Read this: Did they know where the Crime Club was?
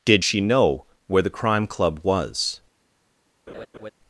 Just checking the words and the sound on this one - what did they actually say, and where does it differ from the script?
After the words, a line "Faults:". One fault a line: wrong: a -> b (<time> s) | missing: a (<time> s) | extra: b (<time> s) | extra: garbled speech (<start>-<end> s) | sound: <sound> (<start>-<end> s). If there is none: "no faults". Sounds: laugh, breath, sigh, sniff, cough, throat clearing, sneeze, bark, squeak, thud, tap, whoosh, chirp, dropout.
Did she know where the Crime Club was?
Faults:
wrong: they -> she (0.2 s)
sound: laugh (3.5-3.9 s)